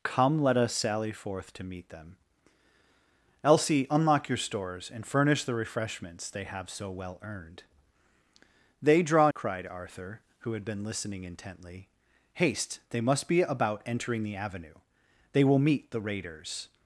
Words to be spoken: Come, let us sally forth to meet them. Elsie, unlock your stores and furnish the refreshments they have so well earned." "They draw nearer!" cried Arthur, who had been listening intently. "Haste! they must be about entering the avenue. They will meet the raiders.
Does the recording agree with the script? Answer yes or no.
no